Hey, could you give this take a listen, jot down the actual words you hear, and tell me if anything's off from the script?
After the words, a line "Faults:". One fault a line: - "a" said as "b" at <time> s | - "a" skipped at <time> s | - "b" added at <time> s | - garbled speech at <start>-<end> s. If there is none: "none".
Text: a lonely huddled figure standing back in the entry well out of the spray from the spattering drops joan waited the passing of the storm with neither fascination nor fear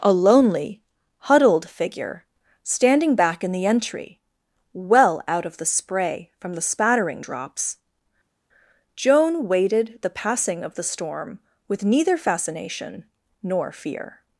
a lonely huddled figure standing back in the entry well out of the spray from the spattering drops joan waited the passing of the storm with neither fascination nor fear
Faults:
none